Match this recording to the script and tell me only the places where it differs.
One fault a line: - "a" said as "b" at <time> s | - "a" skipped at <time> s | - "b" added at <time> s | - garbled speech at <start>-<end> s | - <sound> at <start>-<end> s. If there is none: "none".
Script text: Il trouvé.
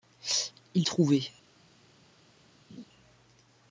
- laugh at 2.7-2.9 s